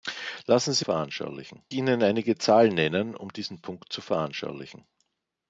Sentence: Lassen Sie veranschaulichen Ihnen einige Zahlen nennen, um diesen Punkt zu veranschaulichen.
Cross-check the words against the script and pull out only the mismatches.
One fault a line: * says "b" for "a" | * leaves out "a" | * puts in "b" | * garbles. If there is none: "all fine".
all fine